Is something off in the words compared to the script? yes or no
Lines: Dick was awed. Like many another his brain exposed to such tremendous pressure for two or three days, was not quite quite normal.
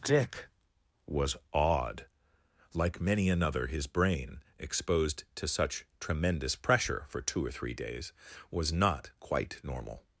yes